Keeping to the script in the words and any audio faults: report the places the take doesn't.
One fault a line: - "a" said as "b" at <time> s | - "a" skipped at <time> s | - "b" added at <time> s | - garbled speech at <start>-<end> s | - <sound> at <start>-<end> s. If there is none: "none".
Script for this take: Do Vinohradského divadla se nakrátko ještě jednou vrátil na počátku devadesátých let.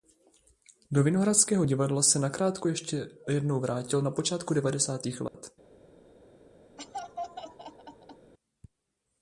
- dropout at 5.3-5.3 s
- laugh at 6.8-8.3 s